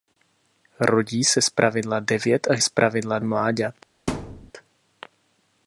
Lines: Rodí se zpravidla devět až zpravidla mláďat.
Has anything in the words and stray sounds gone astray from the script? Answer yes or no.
yes